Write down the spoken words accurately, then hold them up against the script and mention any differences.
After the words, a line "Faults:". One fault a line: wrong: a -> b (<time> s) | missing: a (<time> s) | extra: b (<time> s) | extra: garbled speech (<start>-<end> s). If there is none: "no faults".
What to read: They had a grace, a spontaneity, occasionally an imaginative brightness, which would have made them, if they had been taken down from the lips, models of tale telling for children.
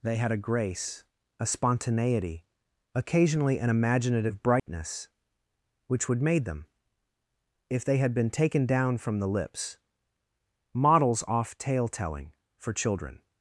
They had a grace, a spontaneity, occasionally an imaginative brightness, which would made them, if they had been taken down from the lips, models off tale telling for children.
Faults:
missing: have (6.2 s)
wrong: of -> off (11.3 s)